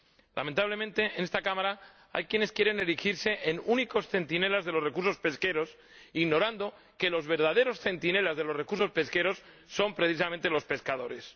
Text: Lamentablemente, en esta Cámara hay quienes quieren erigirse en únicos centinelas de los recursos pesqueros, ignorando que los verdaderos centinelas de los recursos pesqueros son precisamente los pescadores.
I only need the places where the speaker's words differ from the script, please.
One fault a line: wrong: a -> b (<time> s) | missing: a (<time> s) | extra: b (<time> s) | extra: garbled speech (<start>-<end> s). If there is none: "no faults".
no faults